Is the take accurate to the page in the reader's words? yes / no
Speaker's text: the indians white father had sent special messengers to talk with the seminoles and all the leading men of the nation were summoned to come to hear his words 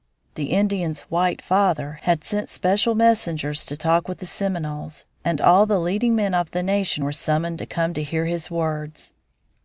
yes